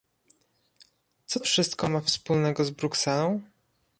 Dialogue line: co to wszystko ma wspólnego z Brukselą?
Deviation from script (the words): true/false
true